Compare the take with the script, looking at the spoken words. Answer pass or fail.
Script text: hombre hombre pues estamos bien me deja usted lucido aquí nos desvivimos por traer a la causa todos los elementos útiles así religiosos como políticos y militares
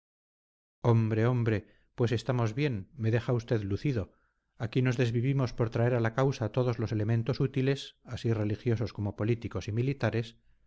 pass